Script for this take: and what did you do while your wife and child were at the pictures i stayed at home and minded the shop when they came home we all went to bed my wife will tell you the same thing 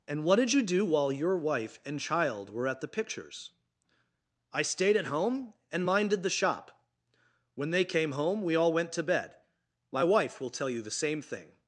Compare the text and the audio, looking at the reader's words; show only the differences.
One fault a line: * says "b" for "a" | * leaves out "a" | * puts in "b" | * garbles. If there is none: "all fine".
all fine